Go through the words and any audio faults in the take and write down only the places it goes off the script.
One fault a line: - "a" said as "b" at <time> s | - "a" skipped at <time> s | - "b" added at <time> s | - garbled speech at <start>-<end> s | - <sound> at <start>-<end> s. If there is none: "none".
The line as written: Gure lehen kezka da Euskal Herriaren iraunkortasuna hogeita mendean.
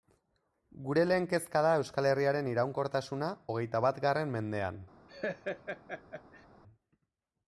- "batgarren" added at 3.9 s
- laugh at 5.1-6.5 s